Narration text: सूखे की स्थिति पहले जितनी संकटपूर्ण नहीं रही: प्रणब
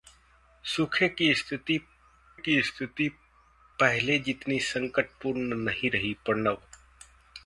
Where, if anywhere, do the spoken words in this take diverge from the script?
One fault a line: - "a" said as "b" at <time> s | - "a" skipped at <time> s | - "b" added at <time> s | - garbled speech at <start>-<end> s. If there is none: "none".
- "की स्थिति" added at 2.4 s